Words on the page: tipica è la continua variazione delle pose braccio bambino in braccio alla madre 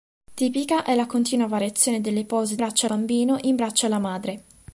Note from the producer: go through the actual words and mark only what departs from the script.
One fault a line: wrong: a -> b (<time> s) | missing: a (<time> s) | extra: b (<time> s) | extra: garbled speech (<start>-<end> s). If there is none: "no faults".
no faults